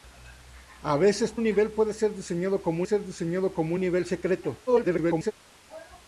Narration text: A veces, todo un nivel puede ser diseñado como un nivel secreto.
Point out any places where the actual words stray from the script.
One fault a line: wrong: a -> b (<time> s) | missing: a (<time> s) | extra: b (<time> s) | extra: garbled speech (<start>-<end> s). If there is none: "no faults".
missing: todo (1.4 s)
extra: ser diseñado como (2.8 s)
extra: garbled speech (4.7-5.3 s)